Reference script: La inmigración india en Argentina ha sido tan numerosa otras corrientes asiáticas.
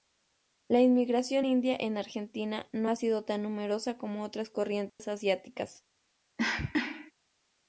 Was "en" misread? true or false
false